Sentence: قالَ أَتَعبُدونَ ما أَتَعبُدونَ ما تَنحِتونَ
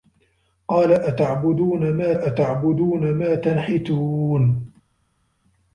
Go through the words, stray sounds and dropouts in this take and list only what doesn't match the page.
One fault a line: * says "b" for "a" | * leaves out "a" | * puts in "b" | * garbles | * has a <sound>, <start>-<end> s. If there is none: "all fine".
all fine